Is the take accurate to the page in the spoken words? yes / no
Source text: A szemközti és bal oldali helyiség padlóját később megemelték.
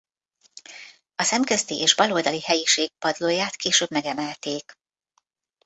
yes